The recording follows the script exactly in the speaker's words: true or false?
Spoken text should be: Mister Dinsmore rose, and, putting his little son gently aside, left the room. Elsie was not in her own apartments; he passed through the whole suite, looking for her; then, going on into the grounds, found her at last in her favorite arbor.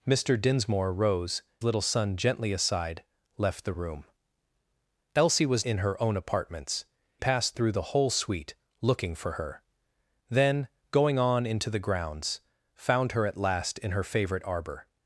false